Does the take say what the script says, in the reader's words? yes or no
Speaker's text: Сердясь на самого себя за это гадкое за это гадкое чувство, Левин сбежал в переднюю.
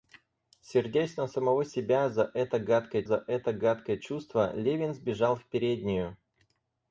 yes